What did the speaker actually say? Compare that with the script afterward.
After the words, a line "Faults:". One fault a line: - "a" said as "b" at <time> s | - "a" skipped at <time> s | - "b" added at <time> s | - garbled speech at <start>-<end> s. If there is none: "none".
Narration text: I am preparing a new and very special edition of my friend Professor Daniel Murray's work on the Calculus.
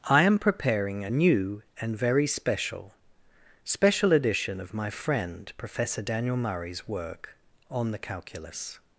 I am preparing a new and very special special edition of my friend Professor Daniel Murray's work on the Calculus.
Faults:
- "special" added at 3.7 s